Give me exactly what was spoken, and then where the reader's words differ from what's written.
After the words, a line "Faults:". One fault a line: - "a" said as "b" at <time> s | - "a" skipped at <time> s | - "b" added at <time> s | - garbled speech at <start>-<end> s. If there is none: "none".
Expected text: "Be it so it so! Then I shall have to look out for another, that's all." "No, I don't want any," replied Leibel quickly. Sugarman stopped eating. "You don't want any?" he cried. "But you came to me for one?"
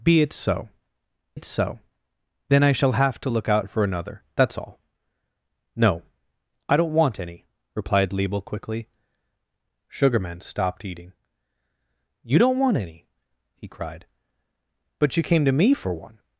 "Be it so it so! Then I shall have to look out for another, that's all." "No, I don't want any," replied Leibel quickly. Sugarman stopped eating. "You don't want any?" he cried. "But you came to me for one?"
Faults:
none